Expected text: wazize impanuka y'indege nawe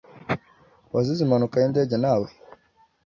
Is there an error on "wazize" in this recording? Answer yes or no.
no